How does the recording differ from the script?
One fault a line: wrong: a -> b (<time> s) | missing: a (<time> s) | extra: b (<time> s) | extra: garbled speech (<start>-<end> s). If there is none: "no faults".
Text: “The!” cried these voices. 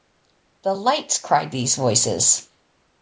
extra: lights (0.7 s)